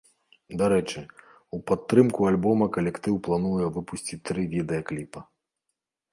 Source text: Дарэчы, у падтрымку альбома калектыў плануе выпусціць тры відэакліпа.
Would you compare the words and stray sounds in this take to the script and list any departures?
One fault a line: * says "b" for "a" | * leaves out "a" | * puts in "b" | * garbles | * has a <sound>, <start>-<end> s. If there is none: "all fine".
all fine